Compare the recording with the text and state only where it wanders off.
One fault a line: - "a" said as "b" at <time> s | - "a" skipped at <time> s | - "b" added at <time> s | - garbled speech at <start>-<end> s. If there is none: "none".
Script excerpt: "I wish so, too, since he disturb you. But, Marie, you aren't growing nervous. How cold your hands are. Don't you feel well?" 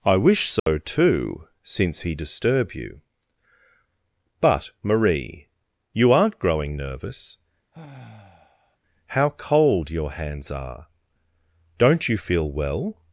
none